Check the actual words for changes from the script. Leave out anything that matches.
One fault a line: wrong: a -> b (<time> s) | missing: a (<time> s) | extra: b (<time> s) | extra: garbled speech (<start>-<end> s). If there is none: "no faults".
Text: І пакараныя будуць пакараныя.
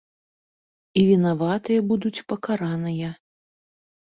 wrong: пакараныя -> вінаватыя (1.1 s)